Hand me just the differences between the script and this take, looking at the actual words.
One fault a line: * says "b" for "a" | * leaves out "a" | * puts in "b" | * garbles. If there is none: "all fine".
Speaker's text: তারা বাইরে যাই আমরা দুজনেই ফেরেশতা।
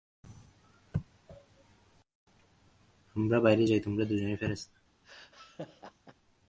* says "আমরা" for "তারা"
* says "তোমরা" for "আমরা"